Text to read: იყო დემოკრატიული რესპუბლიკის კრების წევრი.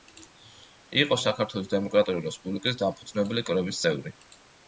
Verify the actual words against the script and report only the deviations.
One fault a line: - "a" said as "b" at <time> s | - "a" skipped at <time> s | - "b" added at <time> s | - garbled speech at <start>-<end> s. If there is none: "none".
- "საქართველოს" added at 1.2 s
- "დამფუძნებელი" added at 2.8 s